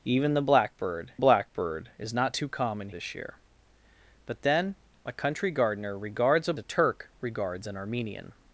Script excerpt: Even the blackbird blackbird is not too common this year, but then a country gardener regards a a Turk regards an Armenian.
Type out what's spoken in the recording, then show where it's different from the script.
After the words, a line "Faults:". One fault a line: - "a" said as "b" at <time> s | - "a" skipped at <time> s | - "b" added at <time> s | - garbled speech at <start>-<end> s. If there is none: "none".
Even the blackbird blackbird is not too common this year, but then a country gardener regards a a Turk regards an Armenian.
Faults:
none